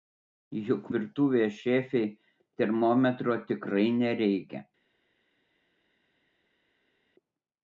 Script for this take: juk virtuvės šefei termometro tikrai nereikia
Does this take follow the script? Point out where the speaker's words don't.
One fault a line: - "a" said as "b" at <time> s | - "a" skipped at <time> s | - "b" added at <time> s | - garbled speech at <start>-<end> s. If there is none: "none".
none